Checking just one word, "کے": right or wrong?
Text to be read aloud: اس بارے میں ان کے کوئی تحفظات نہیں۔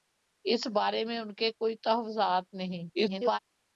right